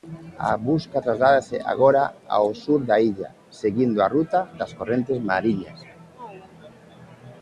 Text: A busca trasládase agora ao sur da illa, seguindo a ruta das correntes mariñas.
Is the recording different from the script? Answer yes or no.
no